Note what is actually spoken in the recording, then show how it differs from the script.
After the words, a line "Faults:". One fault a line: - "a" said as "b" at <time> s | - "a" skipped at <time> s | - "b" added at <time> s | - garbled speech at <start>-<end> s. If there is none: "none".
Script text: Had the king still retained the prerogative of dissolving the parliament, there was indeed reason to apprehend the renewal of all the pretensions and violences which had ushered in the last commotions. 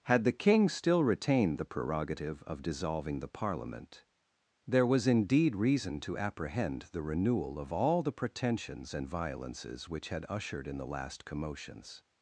Had the king still retained the prerogative of dissolving the parliament, there was indeed reason to apprehend the renewal of all the pretensions and violences which had ushered in the last commotions.
Faults:
none